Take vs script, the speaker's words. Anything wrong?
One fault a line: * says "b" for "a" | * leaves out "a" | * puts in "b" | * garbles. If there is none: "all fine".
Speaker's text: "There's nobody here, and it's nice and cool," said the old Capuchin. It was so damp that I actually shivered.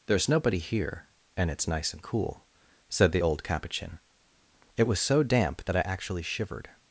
all fine